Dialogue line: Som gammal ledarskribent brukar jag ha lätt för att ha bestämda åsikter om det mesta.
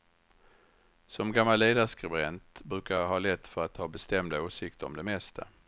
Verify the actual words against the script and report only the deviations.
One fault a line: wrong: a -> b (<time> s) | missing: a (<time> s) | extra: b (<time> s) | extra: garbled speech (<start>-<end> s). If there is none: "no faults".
no faults